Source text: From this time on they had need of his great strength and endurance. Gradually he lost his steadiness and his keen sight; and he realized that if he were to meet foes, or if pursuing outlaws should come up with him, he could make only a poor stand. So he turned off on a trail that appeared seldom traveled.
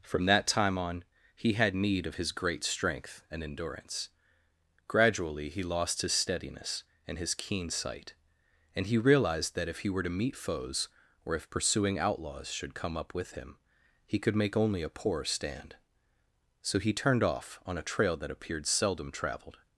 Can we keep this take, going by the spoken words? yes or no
no